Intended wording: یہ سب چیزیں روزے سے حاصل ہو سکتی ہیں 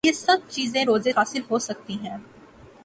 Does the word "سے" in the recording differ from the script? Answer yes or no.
yes